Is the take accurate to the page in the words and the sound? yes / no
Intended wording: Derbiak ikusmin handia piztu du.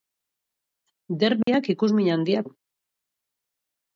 no